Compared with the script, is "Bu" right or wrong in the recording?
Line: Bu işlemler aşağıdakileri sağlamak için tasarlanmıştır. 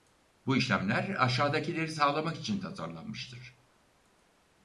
right